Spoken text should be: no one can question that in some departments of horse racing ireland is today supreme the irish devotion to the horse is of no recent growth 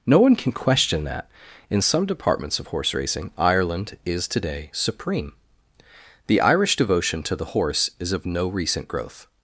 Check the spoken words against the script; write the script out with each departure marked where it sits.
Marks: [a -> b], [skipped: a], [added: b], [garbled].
no one can question that in some departments of horse racing ireland is today supreme the irish devotion to the horse is of no recent growth